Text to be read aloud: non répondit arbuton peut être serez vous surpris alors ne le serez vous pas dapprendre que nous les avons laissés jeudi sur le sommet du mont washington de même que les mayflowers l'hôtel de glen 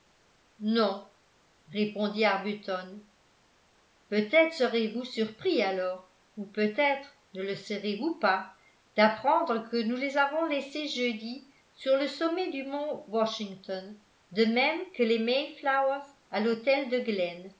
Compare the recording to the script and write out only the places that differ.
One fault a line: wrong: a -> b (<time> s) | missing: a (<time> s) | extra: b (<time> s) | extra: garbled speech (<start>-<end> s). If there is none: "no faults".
extra: ou peut être (6.3 s)
extra: à (16.3 s)